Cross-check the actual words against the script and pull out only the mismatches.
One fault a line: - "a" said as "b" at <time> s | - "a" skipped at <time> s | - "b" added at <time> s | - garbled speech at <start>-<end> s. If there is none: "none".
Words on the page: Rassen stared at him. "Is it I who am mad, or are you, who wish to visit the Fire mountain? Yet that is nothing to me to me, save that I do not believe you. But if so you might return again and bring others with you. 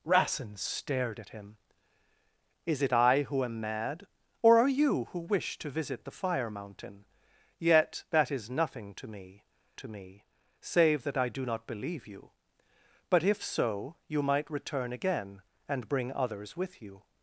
none